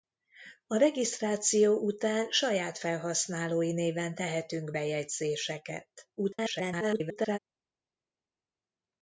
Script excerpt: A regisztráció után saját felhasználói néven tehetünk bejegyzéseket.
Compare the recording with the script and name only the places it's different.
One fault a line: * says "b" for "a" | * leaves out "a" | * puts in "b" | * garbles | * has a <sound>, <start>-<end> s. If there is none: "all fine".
* garbles